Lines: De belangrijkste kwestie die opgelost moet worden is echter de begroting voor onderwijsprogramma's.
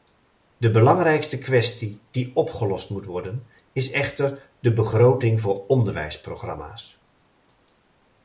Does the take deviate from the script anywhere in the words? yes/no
no